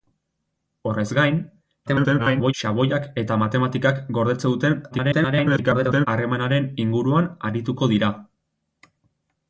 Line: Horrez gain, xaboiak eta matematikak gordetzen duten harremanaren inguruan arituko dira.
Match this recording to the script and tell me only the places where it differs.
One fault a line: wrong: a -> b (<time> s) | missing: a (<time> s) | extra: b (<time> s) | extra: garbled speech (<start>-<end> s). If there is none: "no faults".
extra: garbled speech (1.9-2.5 s)
extra: garbled speech (4.9-6.1 s)